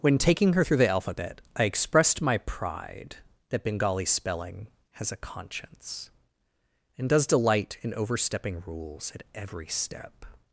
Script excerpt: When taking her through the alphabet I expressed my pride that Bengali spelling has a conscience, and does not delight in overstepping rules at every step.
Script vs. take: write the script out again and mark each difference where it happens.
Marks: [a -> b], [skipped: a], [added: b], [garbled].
When taking her through the alphabet I expressed my pride that Bengali spelling has a conscience, and does [skipped: not] delight in overstepping rules at every step.